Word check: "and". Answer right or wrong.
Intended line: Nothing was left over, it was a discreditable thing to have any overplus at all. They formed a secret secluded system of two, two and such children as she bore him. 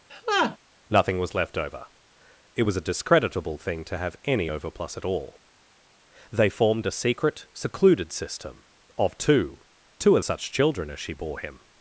wrong